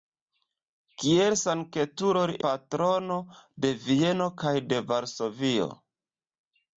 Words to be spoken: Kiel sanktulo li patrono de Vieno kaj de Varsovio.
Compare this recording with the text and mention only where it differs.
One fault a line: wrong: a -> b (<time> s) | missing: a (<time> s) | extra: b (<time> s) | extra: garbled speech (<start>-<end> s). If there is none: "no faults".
no faults